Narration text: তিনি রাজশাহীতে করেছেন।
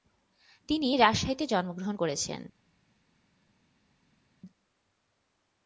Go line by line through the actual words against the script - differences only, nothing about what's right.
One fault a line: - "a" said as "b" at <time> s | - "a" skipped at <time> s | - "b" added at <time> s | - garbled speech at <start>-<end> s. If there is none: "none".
- "জন্মগ্রহণ" added at 1.5 s